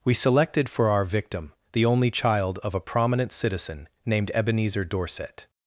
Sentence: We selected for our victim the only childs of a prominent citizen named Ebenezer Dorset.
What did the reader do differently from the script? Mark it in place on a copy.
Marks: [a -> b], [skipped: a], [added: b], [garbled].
We selected for our victim the only [childs -> child] of a prominent citizen named Ebenezer Dorset.